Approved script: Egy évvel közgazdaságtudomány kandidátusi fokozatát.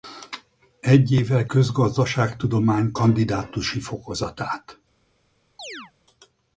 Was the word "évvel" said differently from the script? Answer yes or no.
no